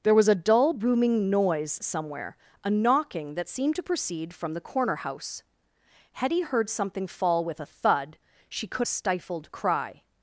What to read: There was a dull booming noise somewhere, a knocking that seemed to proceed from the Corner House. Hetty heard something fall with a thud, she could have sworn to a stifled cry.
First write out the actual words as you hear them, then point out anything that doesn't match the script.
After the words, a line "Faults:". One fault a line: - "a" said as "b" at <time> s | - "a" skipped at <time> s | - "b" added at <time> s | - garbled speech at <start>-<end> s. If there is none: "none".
There was a dull booming noise somewhere, a knocking that seemed to proceed from the Corner House. Hetty heard something fall with a thud, she could a stifled cry.
Faults:
- "have sworn to" skipped at 8.9 s